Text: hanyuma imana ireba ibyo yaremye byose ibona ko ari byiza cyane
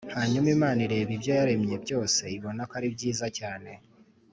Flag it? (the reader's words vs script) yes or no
no